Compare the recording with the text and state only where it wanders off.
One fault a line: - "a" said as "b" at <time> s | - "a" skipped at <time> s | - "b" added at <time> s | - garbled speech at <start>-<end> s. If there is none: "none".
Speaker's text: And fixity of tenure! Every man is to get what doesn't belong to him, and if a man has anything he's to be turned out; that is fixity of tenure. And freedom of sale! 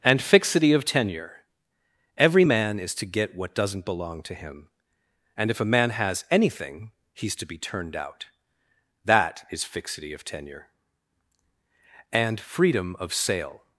none